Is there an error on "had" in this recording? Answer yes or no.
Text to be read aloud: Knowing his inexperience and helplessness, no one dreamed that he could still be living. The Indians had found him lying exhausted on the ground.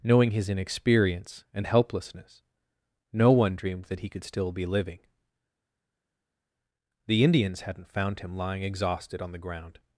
yes